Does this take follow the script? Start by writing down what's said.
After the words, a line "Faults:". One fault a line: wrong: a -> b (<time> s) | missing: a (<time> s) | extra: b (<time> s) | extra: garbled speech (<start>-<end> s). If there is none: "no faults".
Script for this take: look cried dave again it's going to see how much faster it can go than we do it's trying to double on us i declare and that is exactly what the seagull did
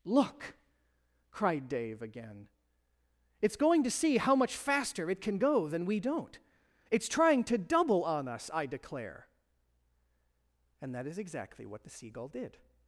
look cried dave again it's going to see how much faster it can go than we don't it's trying to double on us i declare and that is exactly what the seagull did
Faults:
wrong: do -> don't (6.0 s)